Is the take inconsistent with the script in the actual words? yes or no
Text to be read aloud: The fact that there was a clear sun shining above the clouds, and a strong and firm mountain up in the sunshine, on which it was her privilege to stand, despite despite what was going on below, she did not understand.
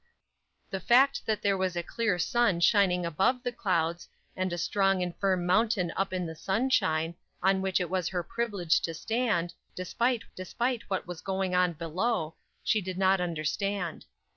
no